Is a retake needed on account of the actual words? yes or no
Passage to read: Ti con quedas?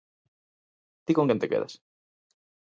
yes